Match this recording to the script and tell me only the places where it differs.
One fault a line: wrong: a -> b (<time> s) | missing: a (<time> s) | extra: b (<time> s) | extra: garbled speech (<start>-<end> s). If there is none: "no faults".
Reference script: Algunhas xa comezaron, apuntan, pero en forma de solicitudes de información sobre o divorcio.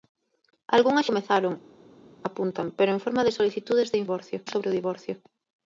missing: xa (1.1 s)
wrong: información -> divorcio (4.0 s)